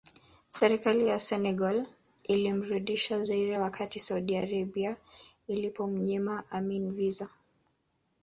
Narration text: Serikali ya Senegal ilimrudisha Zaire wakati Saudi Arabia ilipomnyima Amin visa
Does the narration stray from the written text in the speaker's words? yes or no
no